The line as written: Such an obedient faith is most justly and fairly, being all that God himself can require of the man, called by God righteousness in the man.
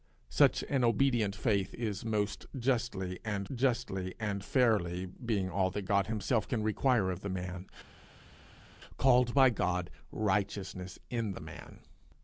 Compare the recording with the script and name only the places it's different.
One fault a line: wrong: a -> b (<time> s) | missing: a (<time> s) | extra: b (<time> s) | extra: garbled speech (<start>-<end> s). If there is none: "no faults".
extra: justly and (3.5 s)